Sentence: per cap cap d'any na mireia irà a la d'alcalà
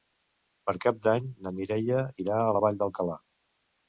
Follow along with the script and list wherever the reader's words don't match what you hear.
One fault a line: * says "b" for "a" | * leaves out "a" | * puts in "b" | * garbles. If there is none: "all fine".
* leaves out "cap"
* puts in "vall"